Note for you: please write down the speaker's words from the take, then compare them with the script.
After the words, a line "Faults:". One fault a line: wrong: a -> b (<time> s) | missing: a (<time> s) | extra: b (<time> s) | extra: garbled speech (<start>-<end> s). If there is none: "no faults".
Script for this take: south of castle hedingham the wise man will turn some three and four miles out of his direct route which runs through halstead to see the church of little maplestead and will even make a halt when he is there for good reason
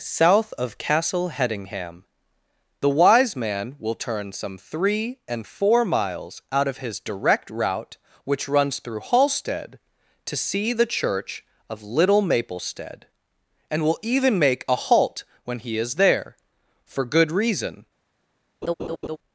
south of castle hedingham the wise man will turn some three and four miles out of his direct route which runs through halstead to see the church of little maplestead and will even make a halt when he is there for good reason
Faults:
no faults